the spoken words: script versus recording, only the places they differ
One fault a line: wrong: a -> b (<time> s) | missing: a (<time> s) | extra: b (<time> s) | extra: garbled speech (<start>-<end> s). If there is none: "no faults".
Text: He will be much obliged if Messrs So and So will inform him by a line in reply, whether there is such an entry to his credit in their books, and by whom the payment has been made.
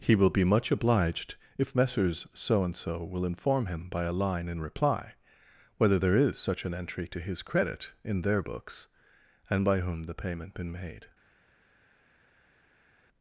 missing: has (10.5 s)